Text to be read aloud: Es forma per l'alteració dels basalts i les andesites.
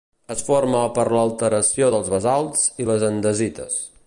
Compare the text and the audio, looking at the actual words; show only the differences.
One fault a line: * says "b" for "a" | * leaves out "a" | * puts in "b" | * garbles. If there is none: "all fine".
all fine